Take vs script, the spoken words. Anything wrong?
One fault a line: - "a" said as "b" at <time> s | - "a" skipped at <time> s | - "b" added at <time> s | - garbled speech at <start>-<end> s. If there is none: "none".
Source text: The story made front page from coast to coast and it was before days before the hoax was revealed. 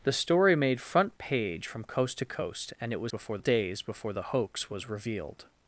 none